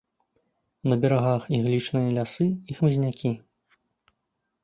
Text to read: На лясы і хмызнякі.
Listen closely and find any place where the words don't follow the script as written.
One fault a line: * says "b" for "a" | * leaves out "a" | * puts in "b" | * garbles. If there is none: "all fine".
* puts in "берагах іглічныя"